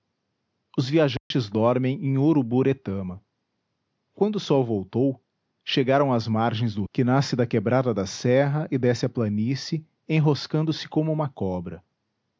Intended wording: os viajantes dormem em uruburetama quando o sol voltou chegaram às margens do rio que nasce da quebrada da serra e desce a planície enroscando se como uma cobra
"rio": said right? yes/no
no